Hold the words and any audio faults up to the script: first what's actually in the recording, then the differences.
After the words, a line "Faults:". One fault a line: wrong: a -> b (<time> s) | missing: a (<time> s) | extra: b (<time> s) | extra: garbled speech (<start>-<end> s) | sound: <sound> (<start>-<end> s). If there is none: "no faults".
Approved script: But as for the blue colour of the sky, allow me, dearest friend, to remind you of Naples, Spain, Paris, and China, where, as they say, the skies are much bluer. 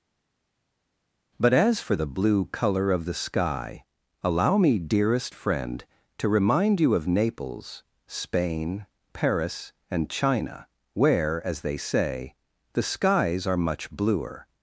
But as for the blue colour of the sky, allow me, dearest friend, to remind you of Naples, Spain, Paris, and China, where, as they say, the skies are much bluer.
Faults:
no faults